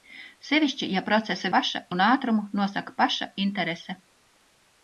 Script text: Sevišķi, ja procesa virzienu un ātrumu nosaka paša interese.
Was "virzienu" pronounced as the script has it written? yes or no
no